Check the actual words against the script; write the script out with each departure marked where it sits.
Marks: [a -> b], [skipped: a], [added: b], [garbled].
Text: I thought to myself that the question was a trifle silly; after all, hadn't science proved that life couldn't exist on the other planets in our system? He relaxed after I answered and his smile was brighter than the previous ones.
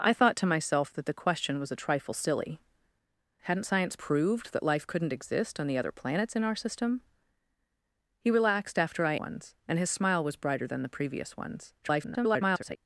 I thought to myself that the question was a trifle silly; [skipped: after all,] hadn't science proved that life couldn't exist on the other planets in our system? He relaxed after I [answered -> ones] and his smile was brighter than the previous ones. [garbled]